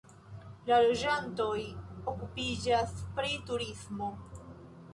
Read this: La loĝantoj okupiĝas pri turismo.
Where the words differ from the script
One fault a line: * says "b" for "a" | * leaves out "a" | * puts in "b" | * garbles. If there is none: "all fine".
all fine